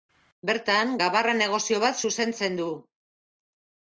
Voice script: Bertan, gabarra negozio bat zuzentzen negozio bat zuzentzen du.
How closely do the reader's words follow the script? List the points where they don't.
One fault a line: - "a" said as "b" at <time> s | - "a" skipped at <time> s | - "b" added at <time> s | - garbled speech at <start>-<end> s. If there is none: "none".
- "negozio bat zuzentzen" skipped at 2.6 s